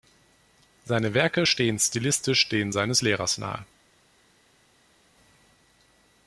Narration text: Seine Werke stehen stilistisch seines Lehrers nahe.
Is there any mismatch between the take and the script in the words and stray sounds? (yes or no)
yes